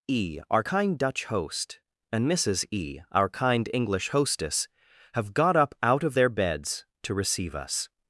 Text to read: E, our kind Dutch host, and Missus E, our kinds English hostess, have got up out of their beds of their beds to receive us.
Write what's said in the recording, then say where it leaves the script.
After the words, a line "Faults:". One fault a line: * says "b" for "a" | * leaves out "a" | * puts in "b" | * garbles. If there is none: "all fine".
E, our kind Dutch host, and Missus E, our kind English hostess, have got up out of their beds to receive us.
Faults:
* says "kind" for "kinds"
* leaves out "of their beds"